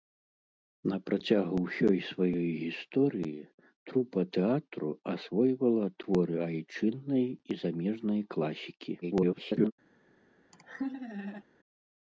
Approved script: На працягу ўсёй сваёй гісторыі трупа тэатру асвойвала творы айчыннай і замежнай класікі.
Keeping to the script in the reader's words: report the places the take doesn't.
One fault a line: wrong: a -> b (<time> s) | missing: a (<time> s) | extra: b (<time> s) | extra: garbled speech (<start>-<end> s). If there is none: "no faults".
extra: garbled speech (9.0-9.7 s)